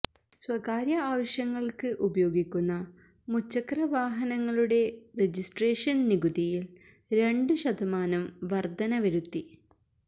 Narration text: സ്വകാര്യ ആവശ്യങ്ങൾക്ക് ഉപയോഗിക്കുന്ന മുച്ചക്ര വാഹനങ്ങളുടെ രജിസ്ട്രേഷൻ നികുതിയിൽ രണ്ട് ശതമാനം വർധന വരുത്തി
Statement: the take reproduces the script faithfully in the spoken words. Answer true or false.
true